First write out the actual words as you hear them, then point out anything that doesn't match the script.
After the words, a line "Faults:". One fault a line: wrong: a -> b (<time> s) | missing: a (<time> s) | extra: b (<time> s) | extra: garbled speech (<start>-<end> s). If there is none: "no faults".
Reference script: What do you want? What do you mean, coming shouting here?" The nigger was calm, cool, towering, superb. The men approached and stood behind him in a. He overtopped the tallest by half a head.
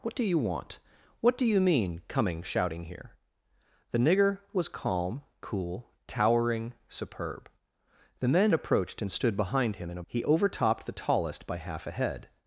What do you want? What do you mean, coming shouting here?" The nigger was calm, cool, towering, superb. The men approached and stood behind him in a. He overtopped the tallest by half a head.
Faults:
no faults